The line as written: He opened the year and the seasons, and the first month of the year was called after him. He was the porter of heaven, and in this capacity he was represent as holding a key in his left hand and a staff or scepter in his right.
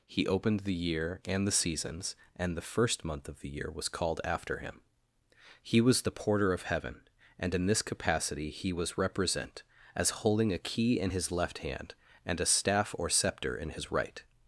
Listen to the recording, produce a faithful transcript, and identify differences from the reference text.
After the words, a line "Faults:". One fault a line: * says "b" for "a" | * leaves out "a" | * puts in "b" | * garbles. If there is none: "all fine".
He opened the year and the seasons, and the first month of the year was called after him. He was the porter of heaven, and in this capacity he was represent as holding a key in his left hand and a staff or scepter in his right.
Faults:
all fine